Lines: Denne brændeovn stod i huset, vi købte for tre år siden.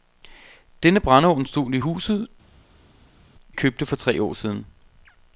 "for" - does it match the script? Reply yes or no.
yes